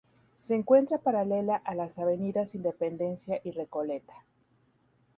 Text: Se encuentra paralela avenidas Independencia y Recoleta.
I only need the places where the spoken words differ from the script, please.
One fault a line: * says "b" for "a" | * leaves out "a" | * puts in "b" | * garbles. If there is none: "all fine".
* puts in "a las"